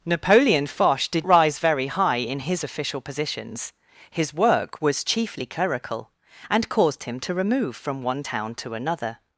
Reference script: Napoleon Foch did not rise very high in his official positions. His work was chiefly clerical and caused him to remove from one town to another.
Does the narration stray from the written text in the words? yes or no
yes